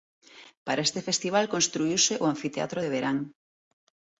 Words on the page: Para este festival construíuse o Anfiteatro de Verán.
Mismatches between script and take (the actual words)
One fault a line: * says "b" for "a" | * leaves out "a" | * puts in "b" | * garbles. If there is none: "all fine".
all fine